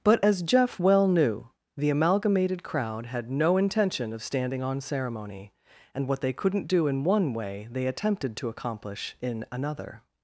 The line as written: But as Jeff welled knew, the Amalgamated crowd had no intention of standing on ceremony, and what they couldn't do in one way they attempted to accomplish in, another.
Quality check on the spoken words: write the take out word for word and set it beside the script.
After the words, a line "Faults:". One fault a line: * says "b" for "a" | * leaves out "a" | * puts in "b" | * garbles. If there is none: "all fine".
But as Jeff well knew, the Amalgamated crowd had no intention of standing on ceremony, and what they couldn't do in one way they attempted to accomplish in, another.
Faults:
* says "well" for "welled"